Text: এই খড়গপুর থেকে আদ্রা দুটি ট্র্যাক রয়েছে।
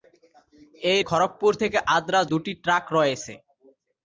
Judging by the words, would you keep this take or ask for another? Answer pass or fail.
pass